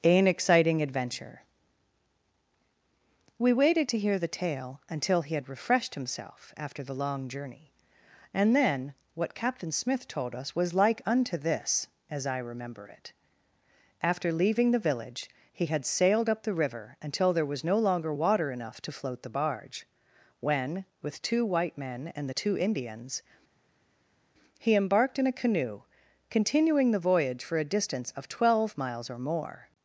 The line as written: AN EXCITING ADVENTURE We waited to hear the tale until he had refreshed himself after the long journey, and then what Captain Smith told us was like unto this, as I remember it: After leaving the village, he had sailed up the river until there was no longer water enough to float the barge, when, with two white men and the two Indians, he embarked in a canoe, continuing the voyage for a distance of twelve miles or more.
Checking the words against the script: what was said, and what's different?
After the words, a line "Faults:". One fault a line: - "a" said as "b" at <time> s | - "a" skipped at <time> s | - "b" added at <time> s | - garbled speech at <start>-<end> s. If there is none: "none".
AN EXCITING ADVENTURE We waited to hear the tale until he had refreshed himself after the long journey, and then what Captain Smith told us was like unto this, as I remember it: After leaving the village, he had sailed up the river until there was no longer water enough to float the barge, when, with two white men and the two Indians, he embarked in a canoe, continuing the voyage for a distance of twelve miles or more.
Faults:
none